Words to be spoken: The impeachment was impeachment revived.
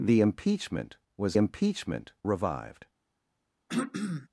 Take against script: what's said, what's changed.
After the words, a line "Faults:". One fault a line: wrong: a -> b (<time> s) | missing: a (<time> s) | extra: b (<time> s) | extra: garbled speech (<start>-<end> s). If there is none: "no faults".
The impeachment was impeachment revived.
Faults:
no faults